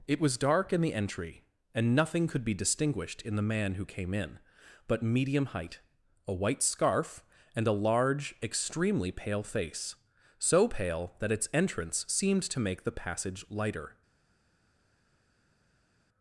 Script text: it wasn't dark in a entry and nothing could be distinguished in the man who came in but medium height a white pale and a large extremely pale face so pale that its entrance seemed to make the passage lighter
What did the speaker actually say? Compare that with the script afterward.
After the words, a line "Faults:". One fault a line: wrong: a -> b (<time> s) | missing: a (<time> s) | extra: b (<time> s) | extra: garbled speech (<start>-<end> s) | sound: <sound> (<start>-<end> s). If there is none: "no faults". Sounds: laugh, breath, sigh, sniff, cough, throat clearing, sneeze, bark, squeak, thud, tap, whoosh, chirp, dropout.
it was dark in the entry and nothing could be distinguished in the man who came in but medium height a white scarf and a large extremely pale face so pale that its entrance seemed to make the passage lighter
Faults:
wrong: wasn't -> was (0.2 s)
wrong: a -> the (0.8 s)
wrong: pale -> scarf (6.6 s)